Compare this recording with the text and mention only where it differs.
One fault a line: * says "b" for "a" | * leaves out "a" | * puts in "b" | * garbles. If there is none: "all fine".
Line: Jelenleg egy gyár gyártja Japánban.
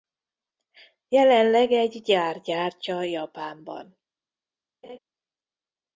all fine